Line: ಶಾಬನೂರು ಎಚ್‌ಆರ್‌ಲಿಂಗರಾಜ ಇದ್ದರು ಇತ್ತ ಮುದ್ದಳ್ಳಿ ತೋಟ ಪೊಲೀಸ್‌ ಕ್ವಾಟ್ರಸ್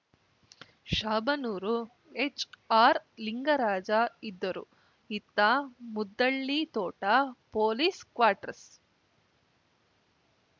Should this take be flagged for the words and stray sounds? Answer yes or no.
no